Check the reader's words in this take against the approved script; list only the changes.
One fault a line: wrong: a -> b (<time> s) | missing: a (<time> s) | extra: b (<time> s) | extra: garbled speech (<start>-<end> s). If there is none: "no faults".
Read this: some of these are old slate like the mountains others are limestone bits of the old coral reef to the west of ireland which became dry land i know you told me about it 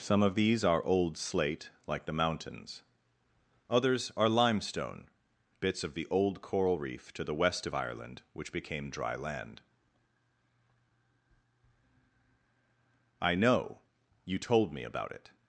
no faults